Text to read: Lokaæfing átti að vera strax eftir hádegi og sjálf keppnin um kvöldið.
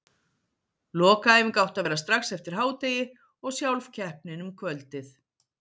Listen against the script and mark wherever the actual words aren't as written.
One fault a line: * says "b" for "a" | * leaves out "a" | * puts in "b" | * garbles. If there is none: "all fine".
all fine